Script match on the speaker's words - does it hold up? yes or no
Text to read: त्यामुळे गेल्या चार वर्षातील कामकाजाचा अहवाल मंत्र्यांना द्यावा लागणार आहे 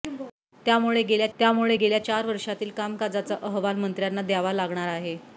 no